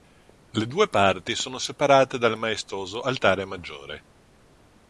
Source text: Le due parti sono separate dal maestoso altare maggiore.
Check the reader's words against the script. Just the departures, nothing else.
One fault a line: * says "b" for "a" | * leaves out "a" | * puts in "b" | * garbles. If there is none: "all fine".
all fine